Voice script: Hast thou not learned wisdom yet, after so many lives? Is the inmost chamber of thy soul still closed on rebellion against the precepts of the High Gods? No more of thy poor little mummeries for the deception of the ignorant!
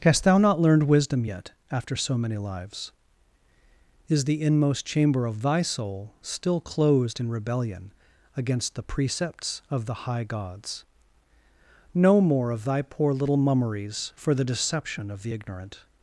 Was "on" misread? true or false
true